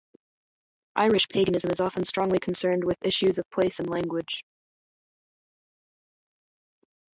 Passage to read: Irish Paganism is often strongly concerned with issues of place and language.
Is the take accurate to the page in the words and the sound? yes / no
yes